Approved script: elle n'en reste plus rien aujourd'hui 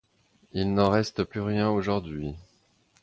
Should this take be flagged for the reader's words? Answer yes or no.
yes